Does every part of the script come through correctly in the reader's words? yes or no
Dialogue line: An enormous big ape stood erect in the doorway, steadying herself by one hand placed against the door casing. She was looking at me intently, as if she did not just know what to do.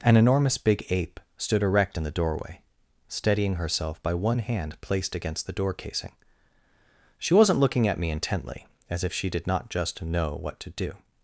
no